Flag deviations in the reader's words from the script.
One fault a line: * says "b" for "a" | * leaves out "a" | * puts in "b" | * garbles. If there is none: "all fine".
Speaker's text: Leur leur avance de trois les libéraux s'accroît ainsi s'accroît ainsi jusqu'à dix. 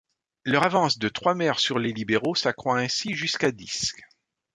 * leaves out "leur"
* puts in "maires sur"
* leaves out "s'accroît ainsi"